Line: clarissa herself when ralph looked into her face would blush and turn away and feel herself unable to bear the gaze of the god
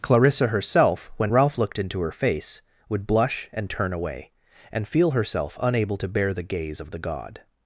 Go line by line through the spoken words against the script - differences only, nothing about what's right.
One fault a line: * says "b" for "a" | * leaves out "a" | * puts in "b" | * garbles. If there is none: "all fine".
all fine